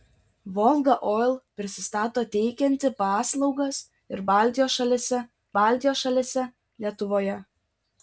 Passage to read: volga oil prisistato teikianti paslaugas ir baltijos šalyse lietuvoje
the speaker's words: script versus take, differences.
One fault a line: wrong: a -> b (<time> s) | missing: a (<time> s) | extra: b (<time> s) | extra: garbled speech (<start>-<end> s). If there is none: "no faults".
extra: baltijos šalyse (5.6 s)